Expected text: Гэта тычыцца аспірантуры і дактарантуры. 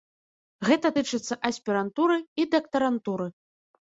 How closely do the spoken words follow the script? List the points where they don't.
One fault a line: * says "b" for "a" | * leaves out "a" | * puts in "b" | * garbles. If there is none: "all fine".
all fine